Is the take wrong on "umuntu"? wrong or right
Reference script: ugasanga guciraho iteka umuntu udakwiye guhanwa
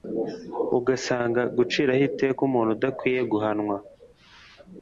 right